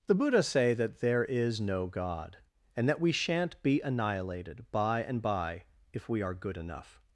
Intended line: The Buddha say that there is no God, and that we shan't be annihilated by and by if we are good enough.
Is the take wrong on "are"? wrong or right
right